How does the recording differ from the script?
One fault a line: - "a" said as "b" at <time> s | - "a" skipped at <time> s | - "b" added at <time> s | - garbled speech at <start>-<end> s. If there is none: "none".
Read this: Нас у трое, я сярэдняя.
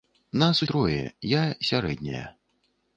none